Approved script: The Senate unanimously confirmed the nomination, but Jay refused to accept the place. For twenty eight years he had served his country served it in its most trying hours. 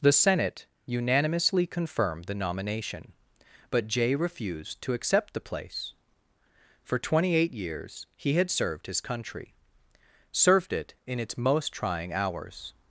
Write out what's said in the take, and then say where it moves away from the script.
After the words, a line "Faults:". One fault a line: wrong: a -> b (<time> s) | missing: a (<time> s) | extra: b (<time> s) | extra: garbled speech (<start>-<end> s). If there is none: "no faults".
The Senate unanimously confirmed the nomination, but Jay refused to accept the place. For twenty eight years he had served his country served it in its most trying hours.
Faults:
no faults